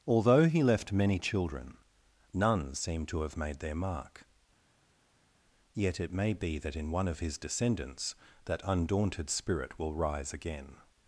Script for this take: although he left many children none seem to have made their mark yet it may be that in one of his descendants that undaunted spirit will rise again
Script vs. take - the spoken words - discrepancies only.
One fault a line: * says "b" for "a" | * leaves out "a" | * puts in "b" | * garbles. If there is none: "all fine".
all fine